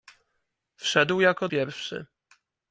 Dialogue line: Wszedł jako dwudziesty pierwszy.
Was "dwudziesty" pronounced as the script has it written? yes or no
no